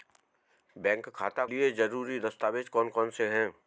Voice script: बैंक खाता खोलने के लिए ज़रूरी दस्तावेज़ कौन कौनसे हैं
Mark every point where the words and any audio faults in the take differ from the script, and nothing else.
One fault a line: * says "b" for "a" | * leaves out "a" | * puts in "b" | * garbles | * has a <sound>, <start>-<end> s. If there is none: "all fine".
* leaves out "खोलने के"